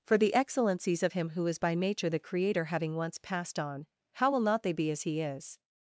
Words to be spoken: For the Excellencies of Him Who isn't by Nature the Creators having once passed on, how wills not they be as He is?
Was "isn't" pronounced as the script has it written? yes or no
no